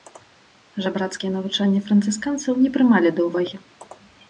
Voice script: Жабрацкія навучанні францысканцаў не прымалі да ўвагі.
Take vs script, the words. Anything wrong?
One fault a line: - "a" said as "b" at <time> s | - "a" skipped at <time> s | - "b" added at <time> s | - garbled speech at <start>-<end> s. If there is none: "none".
none